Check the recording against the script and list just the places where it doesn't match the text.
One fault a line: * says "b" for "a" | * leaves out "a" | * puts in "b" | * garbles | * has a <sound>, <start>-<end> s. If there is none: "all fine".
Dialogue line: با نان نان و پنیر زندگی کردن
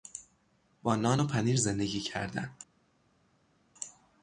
* leaves out "نان"